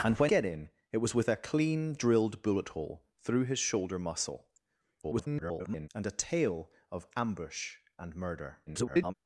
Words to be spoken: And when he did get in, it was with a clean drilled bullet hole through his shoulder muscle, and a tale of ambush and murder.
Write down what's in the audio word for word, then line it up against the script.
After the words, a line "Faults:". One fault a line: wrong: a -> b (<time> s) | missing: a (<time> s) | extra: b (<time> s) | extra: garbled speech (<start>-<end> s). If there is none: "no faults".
And when get in, it was with a clean drilled bullet hole through his shoulder muscle, [garbled] and a tale of ambush and murder. [garbled]
Faults:
missing: he did (0.3 s)
extra: garbled speech (5.0-5.9 s)
extra: garbled speech (8.7-9.1 s)